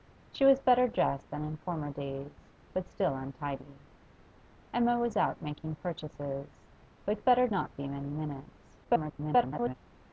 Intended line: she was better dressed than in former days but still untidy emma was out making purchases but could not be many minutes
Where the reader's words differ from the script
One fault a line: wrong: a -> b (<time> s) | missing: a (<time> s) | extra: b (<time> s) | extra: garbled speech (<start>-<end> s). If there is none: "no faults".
wrong: could -> better (7.2 s)
extra: garbled speech (8.8-9.8 s)